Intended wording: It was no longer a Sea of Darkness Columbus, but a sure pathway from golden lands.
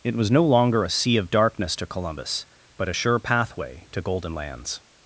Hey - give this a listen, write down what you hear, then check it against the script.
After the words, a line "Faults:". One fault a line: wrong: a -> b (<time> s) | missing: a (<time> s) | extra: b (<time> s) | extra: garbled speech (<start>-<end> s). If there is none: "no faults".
It was no longer a Sea of Darkness to Columbus, but a sure pathway to golden lands.
Faults:
extra: to (1.8 s)
wrong: from -> to (3.9 s)